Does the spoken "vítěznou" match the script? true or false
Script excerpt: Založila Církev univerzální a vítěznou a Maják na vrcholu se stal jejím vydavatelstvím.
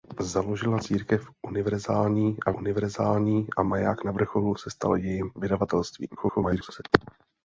false